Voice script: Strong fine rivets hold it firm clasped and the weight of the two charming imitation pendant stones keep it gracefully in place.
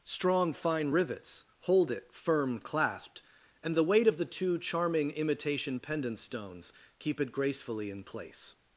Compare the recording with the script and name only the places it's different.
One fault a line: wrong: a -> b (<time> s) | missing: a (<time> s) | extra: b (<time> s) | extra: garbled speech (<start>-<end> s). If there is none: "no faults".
no faults